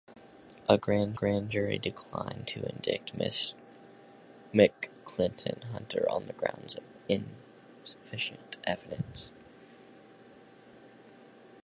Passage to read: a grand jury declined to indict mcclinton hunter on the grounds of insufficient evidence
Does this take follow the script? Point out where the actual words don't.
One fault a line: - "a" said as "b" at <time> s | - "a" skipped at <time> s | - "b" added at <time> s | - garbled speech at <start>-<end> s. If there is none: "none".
- "grand" added at 1.1 s